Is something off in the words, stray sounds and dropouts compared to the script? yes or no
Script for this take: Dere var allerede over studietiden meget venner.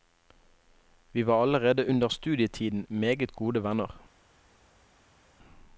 yes